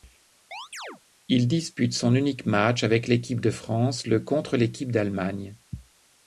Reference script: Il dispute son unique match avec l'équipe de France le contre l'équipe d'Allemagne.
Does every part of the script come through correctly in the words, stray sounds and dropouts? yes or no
no